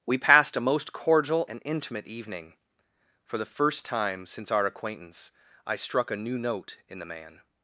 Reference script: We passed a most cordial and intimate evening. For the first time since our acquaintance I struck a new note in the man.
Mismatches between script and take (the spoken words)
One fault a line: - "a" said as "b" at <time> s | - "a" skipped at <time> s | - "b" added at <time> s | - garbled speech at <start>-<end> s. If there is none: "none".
none